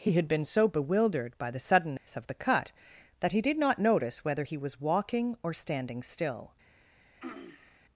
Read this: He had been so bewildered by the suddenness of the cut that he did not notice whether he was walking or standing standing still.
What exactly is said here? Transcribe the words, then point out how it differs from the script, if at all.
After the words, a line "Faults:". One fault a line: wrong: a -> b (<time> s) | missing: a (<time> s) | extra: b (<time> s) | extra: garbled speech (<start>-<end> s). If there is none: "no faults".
He had been so bewildered by the suddenness of the cut that he did not notice whether he was walking or standing still.
Faults:
missing: standing (6.0 s)